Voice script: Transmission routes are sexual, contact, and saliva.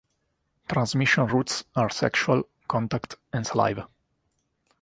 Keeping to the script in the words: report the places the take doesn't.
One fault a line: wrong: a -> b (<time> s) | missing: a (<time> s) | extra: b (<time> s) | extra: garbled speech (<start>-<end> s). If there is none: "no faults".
no faults